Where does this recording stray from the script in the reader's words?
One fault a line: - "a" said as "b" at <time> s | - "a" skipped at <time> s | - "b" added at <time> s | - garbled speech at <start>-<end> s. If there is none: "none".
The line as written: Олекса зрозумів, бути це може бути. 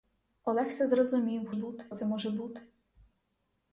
none